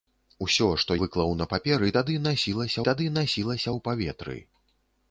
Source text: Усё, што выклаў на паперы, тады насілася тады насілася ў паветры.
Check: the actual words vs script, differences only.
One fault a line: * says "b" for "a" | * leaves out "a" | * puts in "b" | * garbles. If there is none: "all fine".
all fine